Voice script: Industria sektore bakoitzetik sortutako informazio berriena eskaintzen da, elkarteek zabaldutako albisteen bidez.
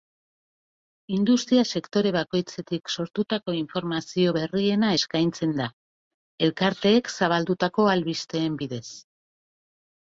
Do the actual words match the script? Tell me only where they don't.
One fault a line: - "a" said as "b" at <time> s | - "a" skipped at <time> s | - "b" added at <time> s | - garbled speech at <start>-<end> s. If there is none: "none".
none